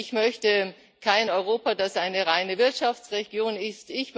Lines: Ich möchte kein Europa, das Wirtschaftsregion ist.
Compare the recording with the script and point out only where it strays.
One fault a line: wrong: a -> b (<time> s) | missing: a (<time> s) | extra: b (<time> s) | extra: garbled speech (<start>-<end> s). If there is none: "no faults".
extra: eine reine (2.0 s)